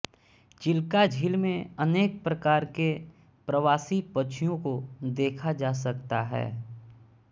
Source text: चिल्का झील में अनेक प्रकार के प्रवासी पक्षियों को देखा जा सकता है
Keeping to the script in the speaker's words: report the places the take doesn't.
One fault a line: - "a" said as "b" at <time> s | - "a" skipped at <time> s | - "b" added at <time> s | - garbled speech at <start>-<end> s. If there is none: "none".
none